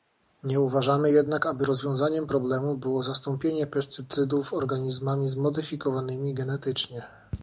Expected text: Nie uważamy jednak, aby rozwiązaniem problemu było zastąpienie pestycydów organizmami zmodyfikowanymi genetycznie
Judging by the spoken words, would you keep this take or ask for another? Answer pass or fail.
pass